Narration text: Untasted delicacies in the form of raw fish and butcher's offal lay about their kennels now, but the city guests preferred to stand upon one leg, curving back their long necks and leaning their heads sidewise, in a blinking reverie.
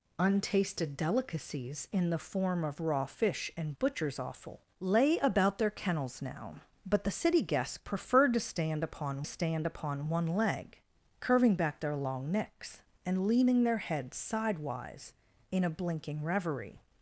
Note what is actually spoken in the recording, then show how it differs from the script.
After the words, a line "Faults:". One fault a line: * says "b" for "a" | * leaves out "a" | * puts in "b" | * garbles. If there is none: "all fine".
Untasted delicacies in the form of raw fish and butcher's offal lay about their kennels now, but the city guests preferred to stand upon stand upon one leg, curving back their long necks and leaning their heads sidewise, in a blinking reverie.
Faults:
* puts in "stand upon"